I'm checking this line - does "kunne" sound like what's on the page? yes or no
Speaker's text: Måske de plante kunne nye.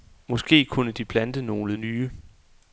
no